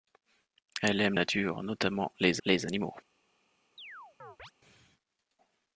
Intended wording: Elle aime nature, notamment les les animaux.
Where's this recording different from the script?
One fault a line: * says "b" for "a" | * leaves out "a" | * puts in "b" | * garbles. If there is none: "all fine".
all fine